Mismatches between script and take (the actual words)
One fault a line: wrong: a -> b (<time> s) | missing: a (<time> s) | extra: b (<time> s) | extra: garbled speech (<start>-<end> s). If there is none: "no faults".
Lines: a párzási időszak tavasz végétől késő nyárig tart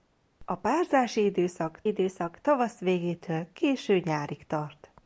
extra: időszak (1.9 s)